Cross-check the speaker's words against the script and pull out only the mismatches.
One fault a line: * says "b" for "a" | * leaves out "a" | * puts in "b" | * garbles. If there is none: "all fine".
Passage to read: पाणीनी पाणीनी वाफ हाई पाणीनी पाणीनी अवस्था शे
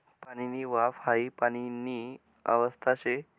* leaves out "पाणीनी"
* leaves out "पाणीनी"